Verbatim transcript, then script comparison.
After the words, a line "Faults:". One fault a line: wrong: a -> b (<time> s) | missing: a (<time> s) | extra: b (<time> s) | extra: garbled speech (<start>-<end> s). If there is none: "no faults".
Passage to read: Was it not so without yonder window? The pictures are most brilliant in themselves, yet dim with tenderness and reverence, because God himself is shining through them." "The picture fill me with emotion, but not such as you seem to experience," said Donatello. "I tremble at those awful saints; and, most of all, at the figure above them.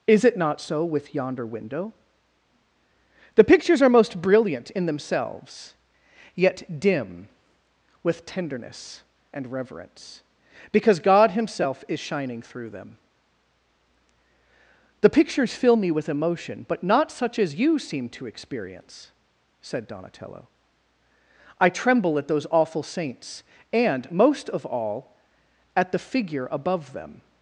Is it not so with yonder window? The pictures are most brilliant in themselves, yet dim with tenderness and reverence, because God himself is shining through them." "The pictures fill me with emotion, but not such as you seem to experience," said Donatello. "I tremble at those awful saints; and, most of all, at the figure above them.
Faults:
wrong: Was -> Is (0.1 s)
wrong: without -> with (0.8 s)
wrong: picture -> pictures (15.1 s)